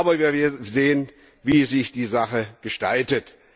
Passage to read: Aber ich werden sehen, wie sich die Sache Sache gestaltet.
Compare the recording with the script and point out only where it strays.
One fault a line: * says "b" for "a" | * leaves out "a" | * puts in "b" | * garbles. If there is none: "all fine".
* says "wir" for "ich"
* leaves out "Sache"